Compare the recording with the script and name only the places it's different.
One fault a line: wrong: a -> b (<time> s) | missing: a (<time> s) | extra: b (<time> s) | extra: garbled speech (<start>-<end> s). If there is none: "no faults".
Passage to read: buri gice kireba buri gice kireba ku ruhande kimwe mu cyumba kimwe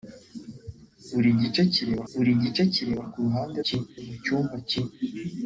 no faults